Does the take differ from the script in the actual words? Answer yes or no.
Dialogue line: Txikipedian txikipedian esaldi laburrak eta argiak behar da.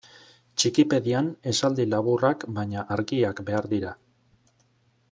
yes